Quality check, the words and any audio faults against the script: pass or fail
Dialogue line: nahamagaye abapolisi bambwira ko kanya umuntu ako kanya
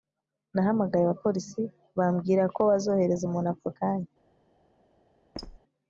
fail